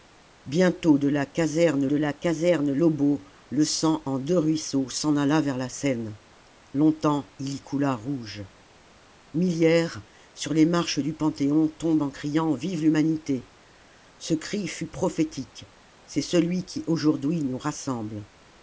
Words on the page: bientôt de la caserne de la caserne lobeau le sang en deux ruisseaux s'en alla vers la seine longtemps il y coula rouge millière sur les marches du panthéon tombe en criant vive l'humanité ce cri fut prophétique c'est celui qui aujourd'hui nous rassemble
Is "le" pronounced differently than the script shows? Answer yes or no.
no